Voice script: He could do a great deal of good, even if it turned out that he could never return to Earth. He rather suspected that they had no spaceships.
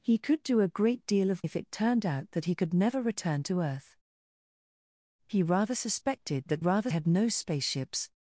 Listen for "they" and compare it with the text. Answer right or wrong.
wrong